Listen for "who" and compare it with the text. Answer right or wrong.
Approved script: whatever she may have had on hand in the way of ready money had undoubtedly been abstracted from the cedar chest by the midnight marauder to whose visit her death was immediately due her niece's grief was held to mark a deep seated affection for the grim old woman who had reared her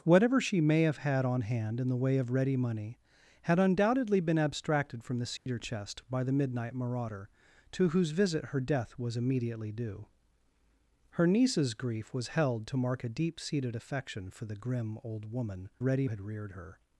wrong